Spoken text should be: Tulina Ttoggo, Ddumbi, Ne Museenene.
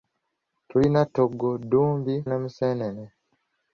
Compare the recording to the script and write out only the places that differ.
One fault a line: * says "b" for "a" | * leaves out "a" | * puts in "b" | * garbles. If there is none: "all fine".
all fine